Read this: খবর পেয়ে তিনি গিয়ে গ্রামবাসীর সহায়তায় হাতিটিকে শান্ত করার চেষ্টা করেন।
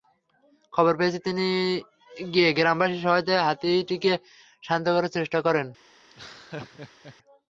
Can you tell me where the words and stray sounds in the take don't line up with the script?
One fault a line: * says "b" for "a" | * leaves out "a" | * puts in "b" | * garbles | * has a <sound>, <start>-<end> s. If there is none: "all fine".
* has a laugh, 6.1-7.2 s